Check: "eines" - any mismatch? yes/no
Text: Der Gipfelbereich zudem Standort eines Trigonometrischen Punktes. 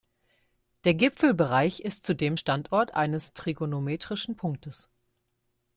no